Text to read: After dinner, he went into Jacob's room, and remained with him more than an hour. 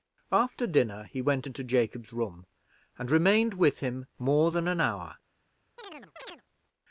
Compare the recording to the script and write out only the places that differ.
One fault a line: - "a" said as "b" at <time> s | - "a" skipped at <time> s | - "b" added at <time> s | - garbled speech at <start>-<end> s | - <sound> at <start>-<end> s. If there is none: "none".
- chirp at 5.8-6.4 s